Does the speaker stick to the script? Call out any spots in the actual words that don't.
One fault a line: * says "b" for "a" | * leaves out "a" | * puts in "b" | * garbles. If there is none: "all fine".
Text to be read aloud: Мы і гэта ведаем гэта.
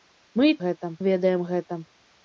all fine